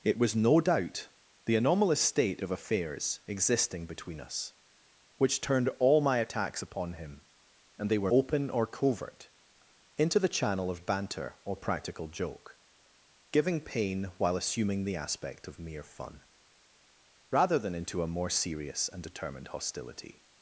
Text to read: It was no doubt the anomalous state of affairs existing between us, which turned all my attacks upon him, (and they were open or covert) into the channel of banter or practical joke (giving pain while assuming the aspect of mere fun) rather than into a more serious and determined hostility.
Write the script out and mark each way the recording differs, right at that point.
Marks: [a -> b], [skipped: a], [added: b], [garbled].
It was no doubt the anomalous state of affairs existing between us, which turned all my attacks upon him, (and they were open or covert) into the channel of banter or practical joke (giving pain while assuming the aspect of mere fun) rather than into a more serious and determined hostility.